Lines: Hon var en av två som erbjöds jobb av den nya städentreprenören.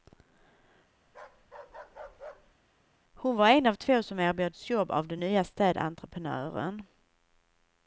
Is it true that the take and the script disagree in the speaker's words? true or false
false